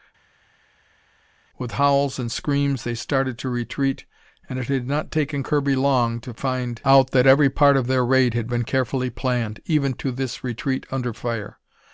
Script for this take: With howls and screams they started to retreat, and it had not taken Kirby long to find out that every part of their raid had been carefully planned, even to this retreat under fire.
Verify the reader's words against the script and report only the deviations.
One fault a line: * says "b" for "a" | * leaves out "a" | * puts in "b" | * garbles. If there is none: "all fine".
all fine